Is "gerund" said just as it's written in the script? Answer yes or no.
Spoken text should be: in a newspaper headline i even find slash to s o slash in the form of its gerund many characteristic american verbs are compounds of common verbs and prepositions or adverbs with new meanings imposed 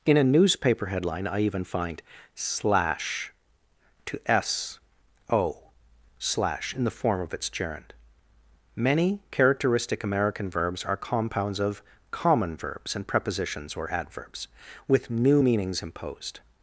yes